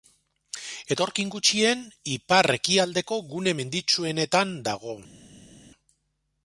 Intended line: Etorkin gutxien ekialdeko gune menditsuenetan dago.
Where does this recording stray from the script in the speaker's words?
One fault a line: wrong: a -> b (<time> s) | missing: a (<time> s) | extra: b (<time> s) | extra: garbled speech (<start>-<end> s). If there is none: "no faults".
extra: ipar (2.1 s)